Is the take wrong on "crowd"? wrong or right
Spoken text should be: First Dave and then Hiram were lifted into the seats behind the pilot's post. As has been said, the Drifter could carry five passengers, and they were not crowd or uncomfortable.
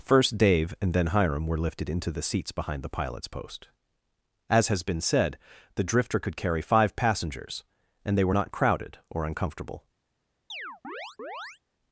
wrong